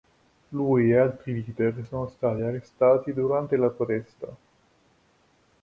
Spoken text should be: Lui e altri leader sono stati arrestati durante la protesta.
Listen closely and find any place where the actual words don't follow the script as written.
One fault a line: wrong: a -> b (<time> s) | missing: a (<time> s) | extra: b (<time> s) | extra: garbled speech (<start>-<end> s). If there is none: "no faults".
no faults